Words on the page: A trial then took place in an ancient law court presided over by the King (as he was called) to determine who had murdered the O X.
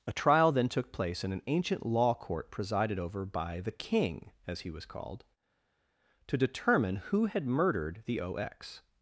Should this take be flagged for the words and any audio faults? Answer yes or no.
no